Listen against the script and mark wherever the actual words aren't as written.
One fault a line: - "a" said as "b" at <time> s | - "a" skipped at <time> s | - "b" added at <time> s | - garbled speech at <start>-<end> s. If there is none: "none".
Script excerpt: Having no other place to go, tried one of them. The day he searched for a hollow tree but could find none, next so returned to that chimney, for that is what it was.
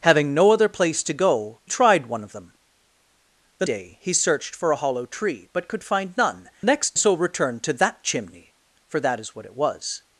none